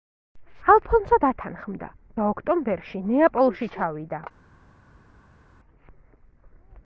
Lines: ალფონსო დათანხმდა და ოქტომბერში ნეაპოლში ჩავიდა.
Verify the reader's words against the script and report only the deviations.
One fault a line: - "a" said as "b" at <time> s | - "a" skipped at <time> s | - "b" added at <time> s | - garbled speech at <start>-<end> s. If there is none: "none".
none